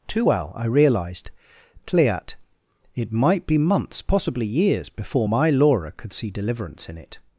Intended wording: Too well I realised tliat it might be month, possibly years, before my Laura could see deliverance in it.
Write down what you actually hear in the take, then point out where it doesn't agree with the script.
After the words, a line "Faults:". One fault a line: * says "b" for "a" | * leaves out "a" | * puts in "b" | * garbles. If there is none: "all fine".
Too well I realised tliat it might be months, possibly years, before my Laura could see deliverance in it.
Faults:
* says "months" for "month"